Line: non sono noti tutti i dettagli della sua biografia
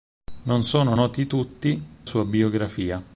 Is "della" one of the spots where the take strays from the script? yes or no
yes